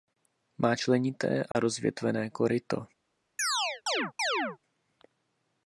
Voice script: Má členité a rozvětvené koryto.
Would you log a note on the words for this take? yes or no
no